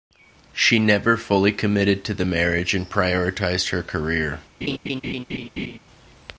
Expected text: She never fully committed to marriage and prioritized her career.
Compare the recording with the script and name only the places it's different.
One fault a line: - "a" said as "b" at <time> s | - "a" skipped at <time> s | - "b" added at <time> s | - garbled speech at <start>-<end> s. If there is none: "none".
- "the" added at 2.1 s